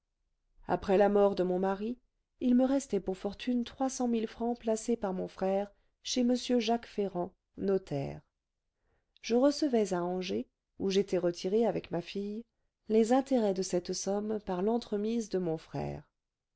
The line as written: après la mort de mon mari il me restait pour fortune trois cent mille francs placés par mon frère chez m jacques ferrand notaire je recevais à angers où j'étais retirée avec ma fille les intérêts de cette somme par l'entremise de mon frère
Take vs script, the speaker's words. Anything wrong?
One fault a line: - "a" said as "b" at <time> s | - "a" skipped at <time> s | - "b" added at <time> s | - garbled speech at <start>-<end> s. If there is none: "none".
none